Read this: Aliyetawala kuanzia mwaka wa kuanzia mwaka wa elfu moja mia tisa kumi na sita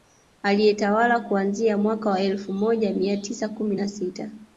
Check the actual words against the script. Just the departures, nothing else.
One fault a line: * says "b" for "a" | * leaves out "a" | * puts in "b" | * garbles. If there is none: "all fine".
* leaves out "kuanzia mwaka wa"